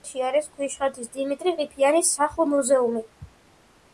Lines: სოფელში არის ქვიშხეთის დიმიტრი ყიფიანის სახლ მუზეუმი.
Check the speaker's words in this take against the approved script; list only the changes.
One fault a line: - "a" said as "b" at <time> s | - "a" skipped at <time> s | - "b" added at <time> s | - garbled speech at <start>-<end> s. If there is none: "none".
none